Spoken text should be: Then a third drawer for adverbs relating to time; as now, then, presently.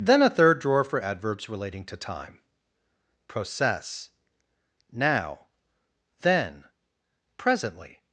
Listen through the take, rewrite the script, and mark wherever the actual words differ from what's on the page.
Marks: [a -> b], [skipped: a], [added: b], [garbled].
Then a third drawer for adverbs relating to time; [as -> process] now, then, presently.